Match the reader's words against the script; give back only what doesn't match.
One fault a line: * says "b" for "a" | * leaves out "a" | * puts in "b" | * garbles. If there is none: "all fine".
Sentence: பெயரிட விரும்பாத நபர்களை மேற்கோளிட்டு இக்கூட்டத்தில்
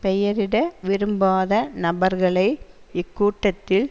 * leaves out "மேற்கோளிட்டு"